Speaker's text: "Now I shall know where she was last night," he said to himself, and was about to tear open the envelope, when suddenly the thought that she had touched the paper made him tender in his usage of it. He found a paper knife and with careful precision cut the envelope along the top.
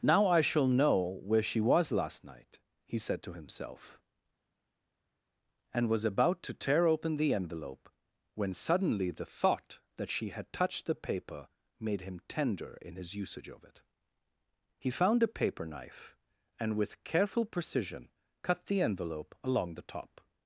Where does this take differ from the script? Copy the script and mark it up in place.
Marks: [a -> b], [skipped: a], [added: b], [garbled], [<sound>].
"Now I shall know where she was last night," he said to himself, and was about to tear open the envelope, when suddenly the thought that she had touched the paper made him tender in his usage of it. He found a paper knife and with careful precision cut the envelope along the top.